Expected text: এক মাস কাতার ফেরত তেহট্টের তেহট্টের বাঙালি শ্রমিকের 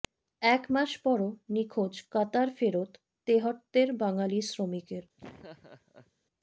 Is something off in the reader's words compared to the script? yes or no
yes